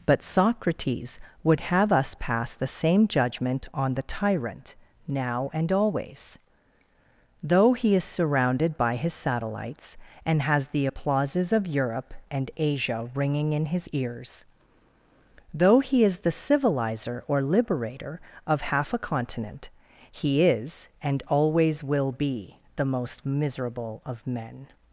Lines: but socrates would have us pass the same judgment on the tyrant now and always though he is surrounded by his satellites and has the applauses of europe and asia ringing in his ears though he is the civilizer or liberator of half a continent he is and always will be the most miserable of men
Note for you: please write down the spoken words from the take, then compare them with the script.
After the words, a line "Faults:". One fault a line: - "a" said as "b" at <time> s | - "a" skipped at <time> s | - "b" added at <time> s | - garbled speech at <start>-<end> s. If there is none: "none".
but socrates would have us pass the same judgment on the tyrant now and always though he is surrounded by his satellites and has the applauses of europe and asia ringing in his ears though he is the civilizer or liberator of half a continent he is and always will be the most miserable of men
Faults:
none